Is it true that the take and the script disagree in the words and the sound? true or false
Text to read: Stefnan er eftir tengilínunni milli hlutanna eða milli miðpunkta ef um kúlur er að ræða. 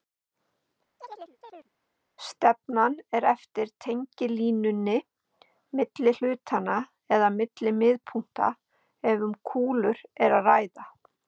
true